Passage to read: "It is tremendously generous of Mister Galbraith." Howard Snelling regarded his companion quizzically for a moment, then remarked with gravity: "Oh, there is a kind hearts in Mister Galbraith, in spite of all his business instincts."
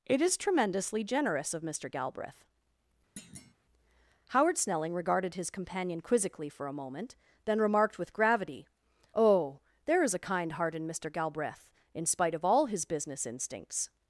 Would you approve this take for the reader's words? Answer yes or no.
no